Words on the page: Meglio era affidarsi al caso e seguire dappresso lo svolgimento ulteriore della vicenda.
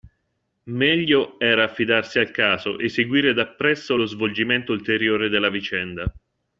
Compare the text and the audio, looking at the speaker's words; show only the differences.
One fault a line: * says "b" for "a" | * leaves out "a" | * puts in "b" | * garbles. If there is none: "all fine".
all fine